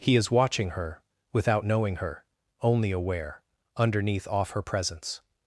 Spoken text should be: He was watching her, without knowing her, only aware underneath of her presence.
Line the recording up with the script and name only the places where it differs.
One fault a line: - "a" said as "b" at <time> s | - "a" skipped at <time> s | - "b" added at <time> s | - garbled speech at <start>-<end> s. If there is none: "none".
- "was" said as "is" at 0.1 s
- "of" said as "off" at 4.3 s